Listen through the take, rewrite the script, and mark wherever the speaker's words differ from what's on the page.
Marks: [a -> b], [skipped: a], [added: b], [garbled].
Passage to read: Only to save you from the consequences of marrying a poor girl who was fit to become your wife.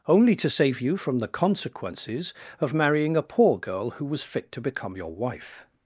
Only to save you from the consequences of marrying a poor girl who was fit to become your wife.